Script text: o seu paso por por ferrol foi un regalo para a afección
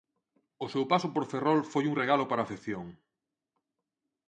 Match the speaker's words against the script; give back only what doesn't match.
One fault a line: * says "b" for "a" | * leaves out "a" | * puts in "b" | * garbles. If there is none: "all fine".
* leaves out "por"